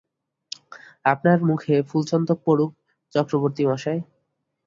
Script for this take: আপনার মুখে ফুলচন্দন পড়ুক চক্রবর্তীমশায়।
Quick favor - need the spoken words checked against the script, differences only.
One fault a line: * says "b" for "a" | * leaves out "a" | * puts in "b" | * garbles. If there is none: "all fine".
all fine